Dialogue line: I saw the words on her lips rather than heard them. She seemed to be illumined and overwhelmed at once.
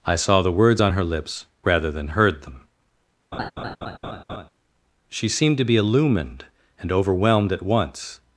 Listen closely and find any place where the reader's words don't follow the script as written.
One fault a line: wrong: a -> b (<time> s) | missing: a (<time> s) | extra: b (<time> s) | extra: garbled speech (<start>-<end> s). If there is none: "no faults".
no faults